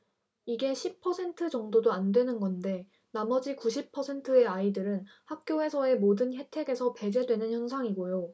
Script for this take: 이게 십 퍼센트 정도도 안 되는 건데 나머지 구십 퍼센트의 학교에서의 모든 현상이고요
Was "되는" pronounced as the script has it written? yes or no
yes